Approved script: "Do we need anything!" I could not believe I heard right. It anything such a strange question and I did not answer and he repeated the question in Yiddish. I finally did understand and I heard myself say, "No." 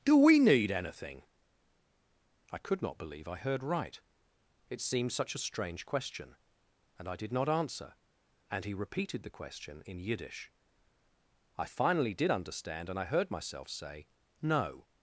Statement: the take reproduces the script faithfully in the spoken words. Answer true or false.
false